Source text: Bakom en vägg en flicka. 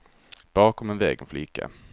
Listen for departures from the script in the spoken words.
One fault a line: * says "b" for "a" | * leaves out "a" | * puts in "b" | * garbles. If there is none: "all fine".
all fine